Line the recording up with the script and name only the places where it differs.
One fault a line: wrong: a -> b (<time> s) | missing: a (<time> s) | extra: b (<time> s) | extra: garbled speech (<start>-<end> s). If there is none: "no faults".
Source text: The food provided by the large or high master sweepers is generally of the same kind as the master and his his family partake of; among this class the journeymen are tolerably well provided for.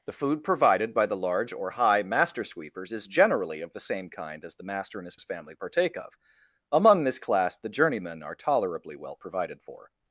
no faults